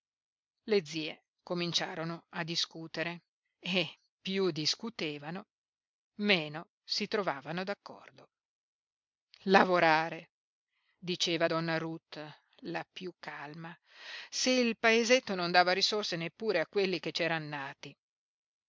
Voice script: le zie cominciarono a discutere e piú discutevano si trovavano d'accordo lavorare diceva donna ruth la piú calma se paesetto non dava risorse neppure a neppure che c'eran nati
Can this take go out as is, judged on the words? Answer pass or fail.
fail